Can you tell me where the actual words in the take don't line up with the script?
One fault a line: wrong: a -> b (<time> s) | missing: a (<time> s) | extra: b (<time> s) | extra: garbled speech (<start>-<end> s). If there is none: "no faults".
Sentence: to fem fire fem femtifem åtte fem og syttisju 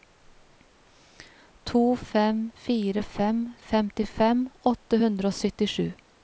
wrong: fem -> hundre (5.0 s)